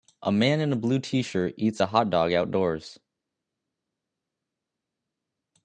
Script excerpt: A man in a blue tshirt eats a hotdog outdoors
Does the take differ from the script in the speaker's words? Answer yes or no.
no